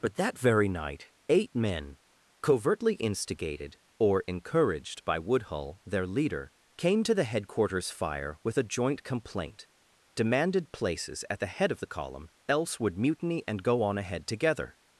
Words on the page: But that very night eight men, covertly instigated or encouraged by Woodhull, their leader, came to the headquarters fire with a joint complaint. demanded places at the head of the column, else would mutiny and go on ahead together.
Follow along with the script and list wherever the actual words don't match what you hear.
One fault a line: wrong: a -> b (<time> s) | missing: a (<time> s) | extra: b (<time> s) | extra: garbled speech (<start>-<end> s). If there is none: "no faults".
no faults